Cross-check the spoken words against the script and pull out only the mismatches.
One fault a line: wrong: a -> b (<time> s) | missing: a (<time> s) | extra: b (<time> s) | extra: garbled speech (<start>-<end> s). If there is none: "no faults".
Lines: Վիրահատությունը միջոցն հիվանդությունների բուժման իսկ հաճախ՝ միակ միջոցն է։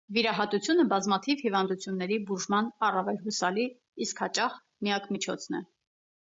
wrong: միջոցն -> բազմաթիվ (0.9 s)
extra: առավել հուսալի (2.9 s)